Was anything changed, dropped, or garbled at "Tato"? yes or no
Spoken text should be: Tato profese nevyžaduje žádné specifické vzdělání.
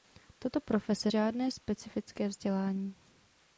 no